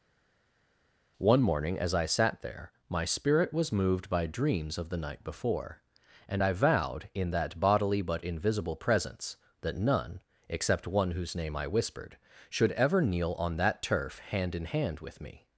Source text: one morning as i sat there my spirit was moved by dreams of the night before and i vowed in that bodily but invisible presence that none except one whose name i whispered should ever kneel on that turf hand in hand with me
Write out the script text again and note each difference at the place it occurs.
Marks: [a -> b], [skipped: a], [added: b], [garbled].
one morning as i sat there my spirit was moved by dreams of the night before and i vowed in that bodily but invisible presence that none except one whose name i whispered should ever kneel on that turf hand in hand with me